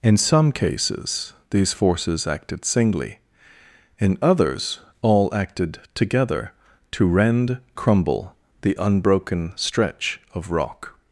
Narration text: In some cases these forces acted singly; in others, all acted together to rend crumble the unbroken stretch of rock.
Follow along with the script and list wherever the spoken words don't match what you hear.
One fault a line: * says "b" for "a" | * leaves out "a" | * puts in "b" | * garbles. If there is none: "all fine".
all fine